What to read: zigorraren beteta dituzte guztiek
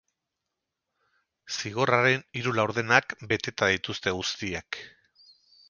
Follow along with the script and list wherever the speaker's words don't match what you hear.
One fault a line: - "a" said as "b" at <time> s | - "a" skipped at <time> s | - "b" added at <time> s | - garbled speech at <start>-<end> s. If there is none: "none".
- "hiru laurdenak" added at 2.4 s